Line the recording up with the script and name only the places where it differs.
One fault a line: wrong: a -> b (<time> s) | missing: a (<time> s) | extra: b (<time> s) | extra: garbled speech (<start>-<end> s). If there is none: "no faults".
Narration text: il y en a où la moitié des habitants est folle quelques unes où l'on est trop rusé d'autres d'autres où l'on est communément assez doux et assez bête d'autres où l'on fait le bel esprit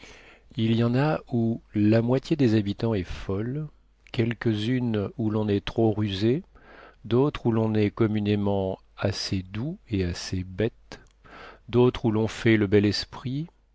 missing: d'autres (7.5 s)